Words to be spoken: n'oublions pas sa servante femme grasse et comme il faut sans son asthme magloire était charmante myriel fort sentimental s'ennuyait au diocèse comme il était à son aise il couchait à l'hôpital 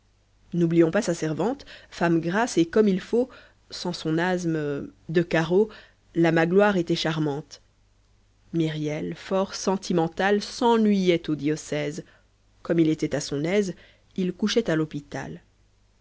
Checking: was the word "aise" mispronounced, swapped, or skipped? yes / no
no